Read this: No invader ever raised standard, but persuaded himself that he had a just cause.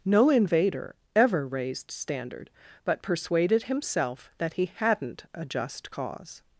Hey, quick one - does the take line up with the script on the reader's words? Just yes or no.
no